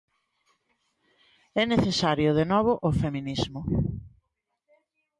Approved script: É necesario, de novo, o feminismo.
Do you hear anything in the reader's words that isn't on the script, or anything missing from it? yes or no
no